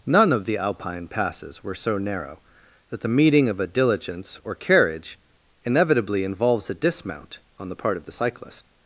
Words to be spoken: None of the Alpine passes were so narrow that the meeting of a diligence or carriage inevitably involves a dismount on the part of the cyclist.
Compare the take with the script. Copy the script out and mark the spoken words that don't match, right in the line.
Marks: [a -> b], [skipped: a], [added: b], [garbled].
None of the Alpine passes were so narrow that the meeting of a diligence or carriage inevitably involves a dismount on the part of the cyclist.